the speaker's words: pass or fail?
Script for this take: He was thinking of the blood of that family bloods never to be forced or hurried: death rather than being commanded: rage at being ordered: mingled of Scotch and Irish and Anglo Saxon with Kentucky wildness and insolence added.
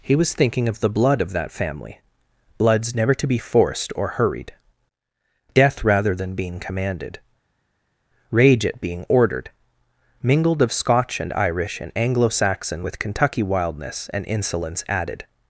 pass